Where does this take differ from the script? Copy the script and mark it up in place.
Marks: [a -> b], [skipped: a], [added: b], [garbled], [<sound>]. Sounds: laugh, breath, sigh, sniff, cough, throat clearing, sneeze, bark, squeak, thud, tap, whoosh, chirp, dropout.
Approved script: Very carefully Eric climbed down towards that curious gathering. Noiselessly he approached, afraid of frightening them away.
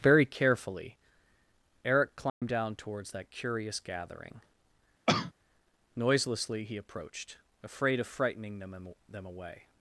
Very carefully Eric climbed [dropout] down towards that curious gathering. [cough] Noiselessly he approached, afraid of frightening them [added: them] away.